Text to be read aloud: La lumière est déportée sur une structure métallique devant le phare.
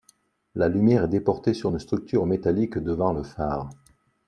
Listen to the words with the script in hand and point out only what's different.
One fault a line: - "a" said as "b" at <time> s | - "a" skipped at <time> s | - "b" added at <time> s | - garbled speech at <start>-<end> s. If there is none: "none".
none